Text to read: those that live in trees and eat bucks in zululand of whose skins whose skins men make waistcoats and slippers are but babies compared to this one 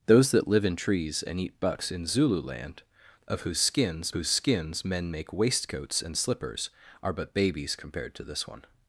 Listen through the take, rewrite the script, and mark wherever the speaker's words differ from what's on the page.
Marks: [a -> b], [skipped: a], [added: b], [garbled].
those that live in trees and eat bucks in zululand of whose skins whose skins men make waistcoats and slippers are but babies compared to this one